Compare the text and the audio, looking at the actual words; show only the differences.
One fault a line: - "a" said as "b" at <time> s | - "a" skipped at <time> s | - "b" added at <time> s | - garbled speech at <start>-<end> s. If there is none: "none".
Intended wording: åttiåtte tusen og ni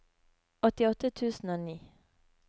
none